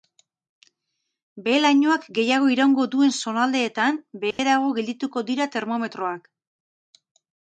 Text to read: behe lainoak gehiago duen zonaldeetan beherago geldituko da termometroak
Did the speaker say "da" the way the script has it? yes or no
no